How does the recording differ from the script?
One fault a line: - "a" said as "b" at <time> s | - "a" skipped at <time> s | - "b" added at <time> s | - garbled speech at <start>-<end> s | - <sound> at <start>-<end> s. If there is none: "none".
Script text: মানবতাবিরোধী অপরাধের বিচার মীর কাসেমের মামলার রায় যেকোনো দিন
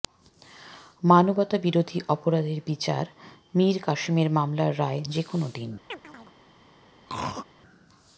- chirp at 5.9-6.4 s
- throat clearing at 7.1-7.5 s